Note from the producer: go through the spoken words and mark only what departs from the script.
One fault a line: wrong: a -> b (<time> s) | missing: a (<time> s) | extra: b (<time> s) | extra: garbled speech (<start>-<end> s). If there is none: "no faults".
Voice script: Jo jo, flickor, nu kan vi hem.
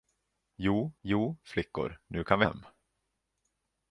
no faults